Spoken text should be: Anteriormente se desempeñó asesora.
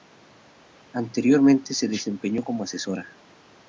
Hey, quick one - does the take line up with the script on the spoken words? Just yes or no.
no